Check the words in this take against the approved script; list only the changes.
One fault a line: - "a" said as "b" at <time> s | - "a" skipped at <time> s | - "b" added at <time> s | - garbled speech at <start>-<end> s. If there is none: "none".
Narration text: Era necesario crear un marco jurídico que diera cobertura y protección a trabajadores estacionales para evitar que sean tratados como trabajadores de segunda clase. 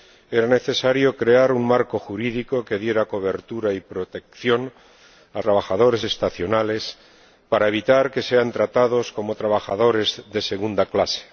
none